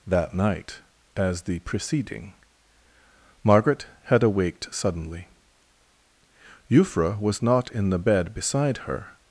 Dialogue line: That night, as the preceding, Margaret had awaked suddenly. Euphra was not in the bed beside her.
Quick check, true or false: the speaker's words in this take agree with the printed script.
true